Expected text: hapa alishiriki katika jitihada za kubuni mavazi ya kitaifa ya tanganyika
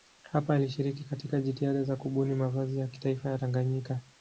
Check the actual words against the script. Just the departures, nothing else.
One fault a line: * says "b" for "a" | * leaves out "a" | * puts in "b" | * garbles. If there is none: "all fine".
all fine